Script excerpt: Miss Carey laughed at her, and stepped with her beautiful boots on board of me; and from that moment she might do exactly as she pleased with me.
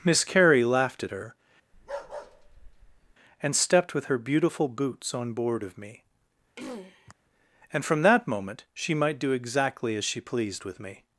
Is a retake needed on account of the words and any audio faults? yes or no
yes